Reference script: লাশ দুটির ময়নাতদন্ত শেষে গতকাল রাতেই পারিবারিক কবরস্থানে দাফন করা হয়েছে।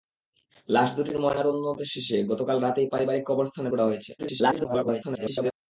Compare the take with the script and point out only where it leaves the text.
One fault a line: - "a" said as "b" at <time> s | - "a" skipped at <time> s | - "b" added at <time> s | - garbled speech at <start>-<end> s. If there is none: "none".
- "দাফন" skipped at 3.7 s
- garbled speech at 4.2-5.5 s